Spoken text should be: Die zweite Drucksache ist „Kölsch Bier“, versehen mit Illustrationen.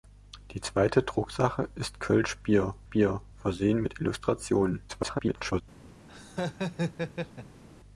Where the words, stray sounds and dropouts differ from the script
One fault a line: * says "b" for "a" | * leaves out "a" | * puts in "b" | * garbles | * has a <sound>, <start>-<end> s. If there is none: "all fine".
* puts in "Bier"
* garbles
* has a laugh, 6.1-7.6 s